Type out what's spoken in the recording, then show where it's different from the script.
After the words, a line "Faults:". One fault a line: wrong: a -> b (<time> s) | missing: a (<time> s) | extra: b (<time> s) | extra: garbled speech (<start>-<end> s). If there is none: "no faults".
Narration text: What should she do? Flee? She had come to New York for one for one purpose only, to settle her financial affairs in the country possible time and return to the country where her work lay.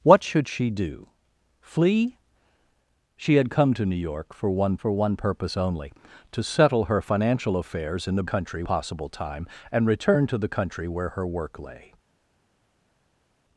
What should she do? Flee? She had come to New York for one for one purpose only, to settle her financial affairs in the country possible time and return to the country where her work lay.
Faults:
no faults